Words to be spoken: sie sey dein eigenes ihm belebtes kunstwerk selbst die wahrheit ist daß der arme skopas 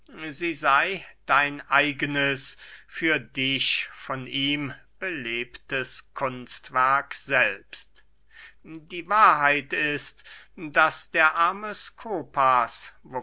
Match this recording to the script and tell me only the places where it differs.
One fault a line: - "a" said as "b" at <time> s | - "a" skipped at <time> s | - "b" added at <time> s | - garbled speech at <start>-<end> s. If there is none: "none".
- "für dich von" added at 2.9 s